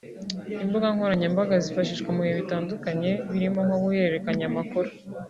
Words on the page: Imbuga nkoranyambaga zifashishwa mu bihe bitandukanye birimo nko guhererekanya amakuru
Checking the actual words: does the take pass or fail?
pass